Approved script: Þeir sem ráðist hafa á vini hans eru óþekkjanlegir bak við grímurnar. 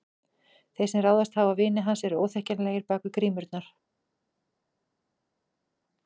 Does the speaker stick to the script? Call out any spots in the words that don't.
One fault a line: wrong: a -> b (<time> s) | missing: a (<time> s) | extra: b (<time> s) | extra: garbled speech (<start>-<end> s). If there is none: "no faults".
no faults